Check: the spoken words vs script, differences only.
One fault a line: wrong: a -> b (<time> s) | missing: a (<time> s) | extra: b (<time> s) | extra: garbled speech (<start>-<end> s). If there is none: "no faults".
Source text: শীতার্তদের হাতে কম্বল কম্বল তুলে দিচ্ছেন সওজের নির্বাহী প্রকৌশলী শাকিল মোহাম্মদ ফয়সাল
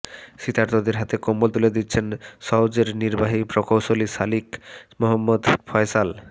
missing: কম্বল (1.5 s)